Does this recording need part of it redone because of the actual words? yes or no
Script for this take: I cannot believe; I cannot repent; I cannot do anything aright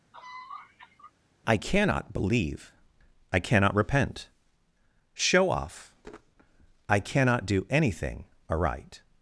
yes